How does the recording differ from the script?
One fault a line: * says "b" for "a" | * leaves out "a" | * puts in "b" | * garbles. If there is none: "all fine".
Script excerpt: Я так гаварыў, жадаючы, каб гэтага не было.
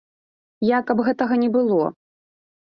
* leaves out "так гаварыў жадаючы"